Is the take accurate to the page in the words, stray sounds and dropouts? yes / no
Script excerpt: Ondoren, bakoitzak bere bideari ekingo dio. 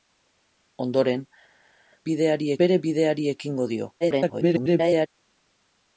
no